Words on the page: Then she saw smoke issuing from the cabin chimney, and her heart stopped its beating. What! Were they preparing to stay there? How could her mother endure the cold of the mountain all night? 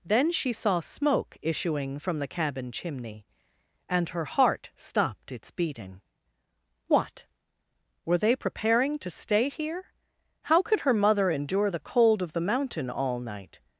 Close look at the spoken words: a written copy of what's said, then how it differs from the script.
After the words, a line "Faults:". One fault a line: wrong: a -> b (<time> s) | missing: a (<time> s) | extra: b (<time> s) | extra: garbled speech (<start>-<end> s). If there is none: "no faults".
Then she saw smoke issuing from the cabin chimney, and her heart stopped its beating. What! Were they preparing to stay here? How could her mother endure the cold of the mountain all night?
Faults:
wrong: there -> here (9.5 s)